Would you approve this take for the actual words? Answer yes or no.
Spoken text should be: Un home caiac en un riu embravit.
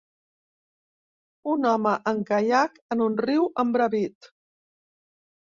no